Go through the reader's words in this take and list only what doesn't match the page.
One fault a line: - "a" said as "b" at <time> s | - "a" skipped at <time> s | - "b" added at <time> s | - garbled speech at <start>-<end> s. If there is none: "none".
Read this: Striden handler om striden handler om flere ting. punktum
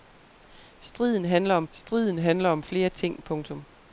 none